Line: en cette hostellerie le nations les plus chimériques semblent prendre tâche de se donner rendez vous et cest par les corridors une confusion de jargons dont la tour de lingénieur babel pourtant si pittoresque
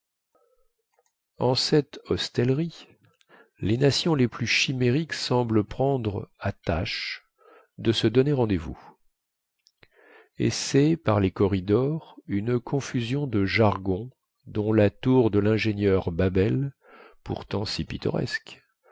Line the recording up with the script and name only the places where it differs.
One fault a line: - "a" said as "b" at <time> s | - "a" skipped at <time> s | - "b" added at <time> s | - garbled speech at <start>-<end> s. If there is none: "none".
- "le" said as "les" at 3.6 s
- "à" added at 6.4 s